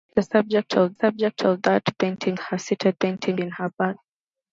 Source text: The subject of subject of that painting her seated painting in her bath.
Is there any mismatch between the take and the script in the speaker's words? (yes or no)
no